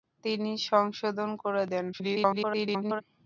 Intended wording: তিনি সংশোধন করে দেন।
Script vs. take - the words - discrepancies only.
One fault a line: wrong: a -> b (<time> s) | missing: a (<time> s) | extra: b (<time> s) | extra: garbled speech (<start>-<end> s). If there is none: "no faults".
extra: garbled speech (1.9-3.0 s)